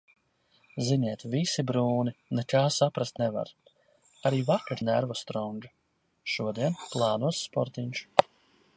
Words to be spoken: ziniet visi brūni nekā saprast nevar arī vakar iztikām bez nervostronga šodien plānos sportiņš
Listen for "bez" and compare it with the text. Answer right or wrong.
wrong